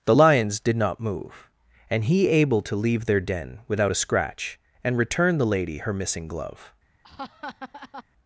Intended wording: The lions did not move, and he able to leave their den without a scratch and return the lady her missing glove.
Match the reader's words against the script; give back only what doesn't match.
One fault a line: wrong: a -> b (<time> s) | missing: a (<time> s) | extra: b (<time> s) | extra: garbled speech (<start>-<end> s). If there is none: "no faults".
no faults